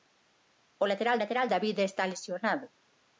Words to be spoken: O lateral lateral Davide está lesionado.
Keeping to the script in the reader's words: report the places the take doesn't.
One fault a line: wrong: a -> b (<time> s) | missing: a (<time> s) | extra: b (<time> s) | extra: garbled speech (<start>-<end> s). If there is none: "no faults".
no faults